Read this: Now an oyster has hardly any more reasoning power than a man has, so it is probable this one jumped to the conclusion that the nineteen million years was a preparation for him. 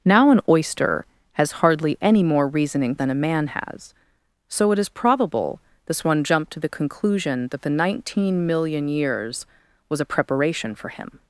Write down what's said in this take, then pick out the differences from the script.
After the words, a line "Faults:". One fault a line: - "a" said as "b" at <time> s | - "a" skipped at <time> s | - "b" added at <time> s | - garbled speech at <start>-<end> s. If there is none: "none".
Now an oyster has hardly any more reasoning than a man has, so it is probable this one jumped to the conclusion that the nineteen million years was a preparation for him.
Faults:
- "power" skipped at 3.0 s